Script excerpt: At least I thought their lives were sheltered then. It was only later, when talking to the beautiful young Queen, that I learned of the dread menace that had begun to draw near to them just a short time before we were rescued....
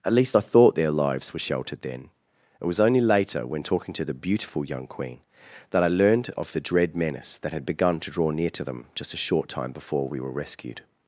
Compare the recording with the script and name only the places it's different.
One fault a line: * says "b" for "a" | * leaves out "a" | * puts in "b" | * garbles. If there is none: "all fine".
all fine